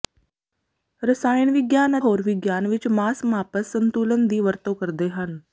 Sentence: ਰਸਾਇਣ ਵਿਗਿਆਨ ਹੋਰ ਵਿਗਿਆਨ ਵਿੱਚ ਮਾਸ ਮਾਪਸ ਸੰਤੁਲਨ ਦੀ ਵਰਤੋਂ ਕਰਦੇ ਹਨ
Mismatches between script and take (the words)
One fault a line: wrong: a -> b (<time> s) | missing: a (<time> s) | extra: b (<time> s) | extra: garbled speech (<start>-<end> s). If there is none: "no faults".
no faults